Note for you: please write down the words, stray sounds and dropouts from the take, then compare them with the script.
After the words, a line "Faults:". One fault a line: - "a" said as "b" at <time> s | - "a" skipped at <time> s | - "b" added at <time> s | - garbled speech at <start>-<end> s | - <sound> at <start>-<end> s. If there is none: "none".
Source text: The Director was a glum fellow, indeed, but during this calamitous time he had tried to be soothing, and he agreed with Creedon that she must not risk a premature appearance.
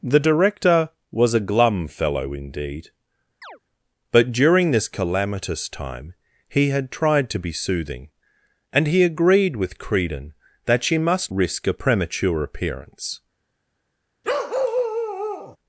The Director was a glum fellow, indeed, but during this calamitous time he had tried to be soothing, and he agreed with Creedon that she must risk a premature appearance.
Faults:
- chirp at 3.4-3.6 s
- "not" skipped at 11.3 s
- bark at 14.2-15.6 s